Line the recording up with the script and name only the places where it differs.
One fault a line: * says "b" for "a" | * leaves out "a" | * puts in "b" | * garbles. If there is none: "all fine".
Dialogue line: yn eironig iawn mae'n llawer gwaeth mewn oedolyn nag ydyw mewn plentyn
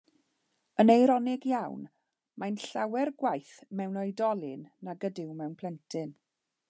all fine